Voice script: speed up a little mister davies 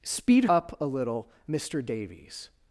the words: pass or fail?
pass